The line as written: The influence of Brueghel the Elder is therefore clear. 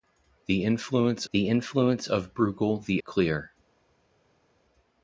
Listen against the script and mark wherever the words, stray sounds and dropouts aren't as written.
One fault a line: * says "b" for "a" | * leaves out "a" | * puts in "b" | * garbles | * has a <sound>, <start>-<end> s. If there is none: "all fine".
* puts in "the influence"
* leaves out "Elder is therefore"